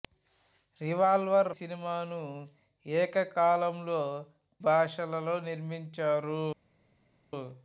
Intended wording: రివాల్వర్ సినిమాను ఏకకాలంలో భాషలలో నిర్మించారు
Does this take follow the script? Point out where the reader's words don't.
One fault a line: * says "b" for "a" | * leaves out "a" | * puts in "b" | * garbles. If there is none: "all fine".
all fine